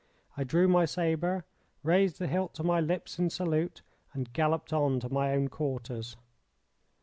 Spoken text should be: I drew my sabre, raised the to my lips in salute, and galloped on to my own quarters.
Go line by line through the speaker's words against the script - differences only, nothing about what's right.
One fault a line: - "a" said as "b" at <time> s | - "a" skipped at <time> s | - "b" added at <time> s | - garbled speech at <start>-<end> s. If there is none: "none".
- "hilt" added at 2.3 s